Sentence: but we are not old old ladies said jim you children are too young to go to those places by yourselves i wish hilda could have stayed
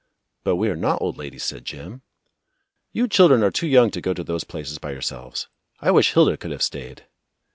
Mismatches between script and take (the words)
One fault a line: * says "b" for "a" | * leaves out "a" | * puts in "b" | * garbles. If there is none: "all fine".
* leaves out "old"